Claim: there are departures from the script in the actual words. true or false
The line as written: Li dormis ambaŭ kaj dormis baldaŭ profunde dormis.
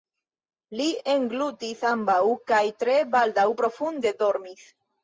true